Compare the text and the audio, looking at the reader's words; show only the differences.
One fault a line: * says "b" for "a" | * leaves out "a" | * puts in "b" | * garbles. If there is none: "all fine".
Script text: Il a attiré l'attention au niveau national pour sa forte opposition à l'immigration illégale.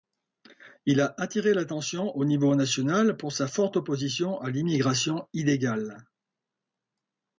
all fine